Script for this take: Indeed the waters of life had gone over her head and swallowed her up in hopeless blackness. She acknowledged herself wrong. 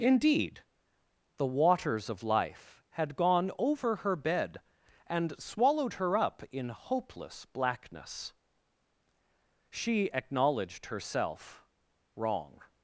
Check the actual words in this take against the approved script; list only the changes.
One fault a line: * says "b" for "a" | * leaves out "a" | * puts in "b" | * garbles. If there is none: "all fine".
* says "bed" for "head"